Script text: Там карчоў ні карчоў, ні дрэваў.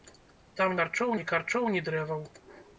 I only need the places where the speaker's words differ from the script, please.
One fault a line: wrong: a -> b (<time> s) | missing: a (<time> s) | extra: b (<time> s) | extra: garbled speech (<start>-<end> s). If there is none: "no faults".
no faults